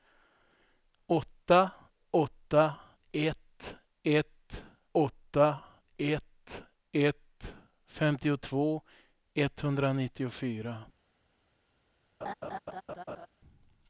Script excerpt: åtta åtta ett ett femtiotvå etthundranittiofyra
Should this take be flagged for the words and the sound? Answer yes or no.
yes